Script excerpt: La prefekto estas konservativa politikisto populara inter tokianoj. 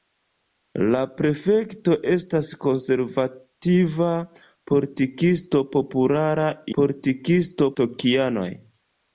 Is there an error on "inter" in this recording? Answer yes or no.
yes